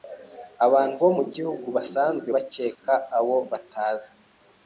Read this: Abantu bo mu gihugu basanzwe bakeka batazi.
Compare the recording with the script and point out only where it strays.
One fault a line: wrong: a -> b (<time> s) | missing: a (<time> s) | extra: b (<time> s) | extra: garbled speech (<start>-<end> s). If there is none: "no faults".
extra: abo (3.2 s)